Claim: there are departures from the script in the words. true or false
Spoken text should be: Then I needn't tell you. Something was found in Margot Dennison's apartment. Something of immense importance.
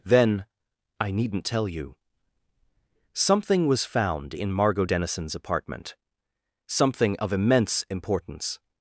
false